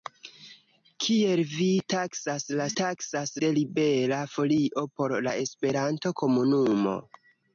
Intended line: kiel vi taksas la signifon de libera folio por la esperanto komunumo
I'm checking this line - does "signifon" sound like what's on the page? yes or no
no